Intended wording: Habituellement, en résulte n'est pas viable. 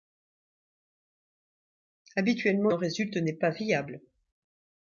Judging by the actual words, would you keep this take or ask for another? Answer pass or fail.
pass